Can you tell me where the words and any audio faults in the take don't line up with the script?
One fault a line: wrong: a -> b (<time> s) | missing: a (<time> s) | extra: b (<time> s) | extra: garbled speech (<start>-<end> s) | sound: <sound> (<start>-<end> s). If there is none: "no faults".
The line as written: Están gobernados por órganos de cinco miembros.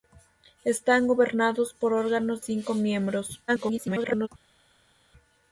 missing: de (2.4 s)
extra: garbled speech (3.5-4.3 s)